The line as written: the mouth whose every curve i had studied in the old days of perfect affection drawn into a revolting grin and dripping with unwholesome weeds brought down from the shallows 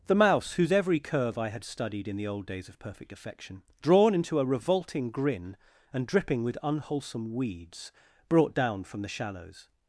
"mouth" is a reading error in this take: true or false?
true